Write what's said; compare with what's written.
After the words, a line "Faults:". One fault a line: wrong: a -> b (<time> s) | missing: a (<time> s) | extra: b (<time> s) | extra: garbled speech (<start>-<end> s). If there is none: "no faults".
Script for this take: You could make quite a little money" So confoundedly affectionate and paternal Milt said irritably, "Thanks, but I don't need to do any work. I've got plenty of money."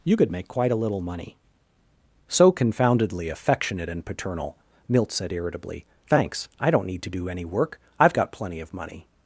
You could make quite a little money" So confoundedly affectionate and paternal Milt said irritably, "Thanks, I don't need to do any work. I've got plenty of money."
Faults:
missing: but (6.5 s)